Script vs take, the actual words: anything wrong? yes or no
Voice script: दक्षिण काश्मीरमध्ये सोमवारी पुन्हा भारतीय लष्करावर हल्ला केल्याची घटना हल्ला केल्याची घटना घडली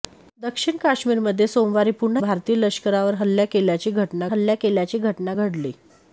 no